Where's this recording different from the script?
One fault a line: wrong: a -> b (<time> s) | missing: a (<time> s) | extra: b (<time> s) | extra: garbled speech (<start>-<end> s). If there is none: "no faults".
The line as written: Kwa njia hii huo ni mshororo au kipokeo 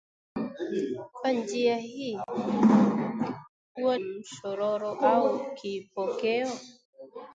missing: ni (4.0 s)